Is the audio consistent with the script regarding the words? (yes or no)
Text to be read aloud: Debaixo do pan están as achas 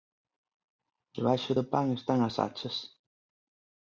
yes